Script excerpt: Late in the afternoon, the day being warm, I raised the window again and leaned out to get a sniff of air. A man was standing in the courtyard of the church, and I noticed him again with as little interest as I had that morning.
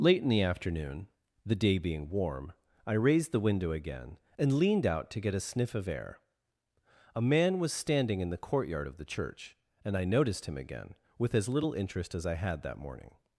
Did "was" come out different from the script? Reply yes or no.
no